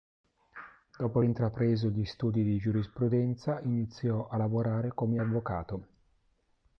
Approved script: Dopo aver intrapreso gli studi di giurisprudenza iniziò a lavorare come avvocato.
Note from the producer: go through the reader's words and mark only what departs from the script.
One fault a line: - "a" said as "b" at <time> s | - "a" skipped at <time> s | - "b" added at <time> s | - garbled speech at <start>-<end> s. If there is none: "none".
- "aver" skipped at 1.2 s